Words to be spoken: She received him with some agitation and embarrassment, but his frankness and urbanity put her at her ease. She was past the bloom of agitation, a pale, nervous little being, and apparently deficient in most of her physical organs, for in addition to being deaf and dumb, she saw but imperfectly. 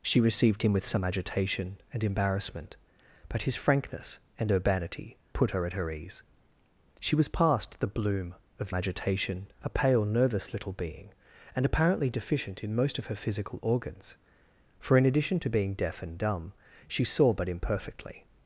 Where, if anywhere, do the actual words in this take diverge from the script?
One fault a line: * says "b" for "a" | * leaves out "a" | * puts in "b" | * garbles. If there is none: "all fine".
all fine